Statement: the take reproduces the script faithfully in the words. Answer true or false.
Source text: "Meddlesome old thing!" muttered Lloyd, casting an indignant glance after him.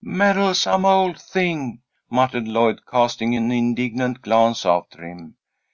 true